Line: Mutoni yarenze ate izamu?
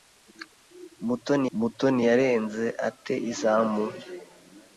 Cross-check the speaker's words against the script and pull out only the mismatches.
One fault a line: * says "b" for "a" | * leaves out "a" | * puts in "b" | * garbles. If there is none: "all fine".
* puts in "mutoni"